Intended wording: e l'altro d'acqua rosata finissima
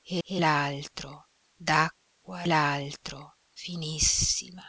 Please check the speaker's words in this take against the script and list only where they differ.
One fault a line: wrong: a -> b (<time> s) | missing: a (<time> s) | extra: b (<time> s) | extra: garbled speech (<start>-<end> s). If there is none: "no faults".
extra: e (0.2 s)
wrong: rosata -> l'altro (2.5 s)